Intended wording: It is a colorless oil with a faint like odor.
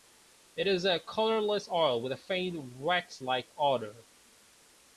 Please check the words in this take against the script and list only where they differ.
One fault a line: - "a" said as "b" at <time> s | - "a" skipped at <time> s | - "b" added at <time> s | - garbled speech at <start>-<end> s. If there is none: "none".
- "wax" added at 2.8 s